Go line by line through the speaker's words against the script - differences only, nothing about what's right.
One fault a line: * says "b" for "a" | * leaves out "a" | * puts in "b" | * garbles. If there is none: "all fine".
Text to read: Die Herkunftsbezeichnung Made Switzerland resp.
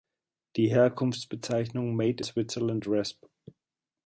all fine